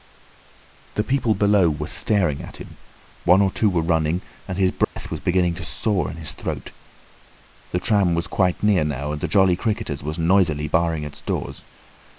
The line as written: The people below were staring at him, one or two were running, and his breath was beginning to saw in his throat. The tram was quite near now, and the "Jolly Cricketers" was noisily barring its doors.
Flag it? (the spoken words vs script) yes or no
no